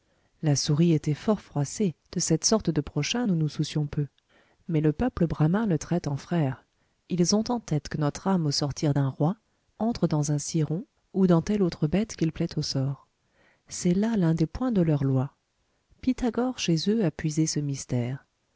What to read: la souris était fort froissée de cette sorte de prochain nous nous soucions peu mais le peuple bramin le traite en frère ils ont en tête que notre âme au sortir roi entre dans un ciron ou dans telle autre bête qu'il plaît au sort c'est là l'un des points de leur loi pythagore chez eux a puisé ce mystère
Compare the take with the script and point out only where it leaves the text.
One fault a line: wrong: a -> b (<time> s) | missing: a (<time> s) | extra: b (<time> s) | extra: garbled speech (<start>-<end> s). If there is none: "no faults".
extra: d'un (8.9 s)